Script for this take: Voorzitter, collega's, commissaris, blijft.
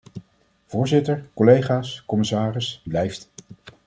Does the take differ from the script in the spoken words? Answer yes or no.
no